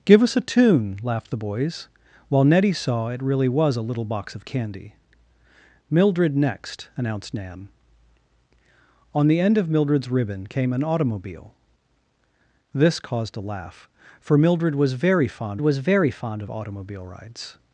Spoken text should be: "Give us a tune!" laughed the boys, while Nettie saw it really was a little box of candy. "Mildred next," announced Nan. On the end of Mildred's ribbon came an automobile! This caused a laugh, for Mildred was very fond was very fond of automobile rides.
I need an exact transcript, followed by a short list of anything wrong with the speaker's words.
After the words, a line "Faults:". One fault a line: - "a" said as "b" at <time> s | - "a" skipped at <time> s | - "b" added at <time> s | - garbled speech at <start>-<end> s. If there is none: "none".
"Give us a tune!" laughed the boys, while Nettie saw it really was a little box of candy. "Mildred next," announced Nan. On the end of Mildred's ribbon came an automobile! This caused a laugh, for Mildred was very fond was very fond of automobile rides.
Faults:
none